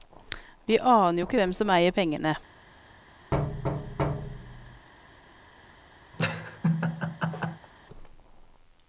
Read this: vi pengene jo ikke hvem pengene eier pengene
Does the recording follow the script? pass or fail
fail